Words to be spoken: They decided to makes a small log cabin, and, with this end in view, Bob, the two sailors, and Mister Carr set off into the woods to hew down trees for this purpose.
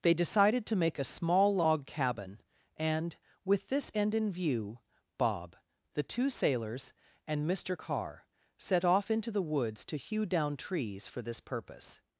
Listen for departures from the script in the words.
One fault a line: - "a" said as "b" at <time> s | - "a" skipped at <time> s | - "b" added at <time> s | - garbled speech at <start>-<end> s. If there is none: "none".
- "makes" said as "make" at 0.8 s